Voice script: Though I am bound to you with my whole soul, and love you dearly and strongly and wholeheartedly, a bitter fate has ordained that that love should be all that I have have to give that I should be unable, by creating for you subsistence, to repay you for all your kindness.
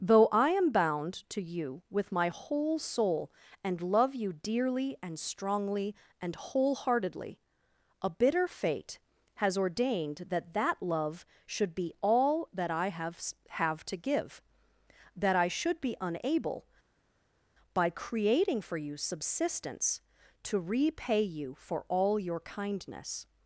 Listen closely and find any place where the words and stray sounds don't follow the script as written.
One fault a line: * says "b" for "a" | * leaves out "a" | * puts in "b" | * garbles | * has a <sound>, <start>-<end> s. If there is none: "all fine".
all fine